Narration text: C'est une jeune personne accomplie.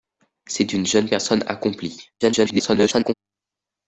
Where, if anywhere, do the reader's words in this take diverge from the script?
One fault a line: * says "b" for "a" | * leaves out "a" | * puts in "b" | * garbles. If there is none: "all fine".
* garbles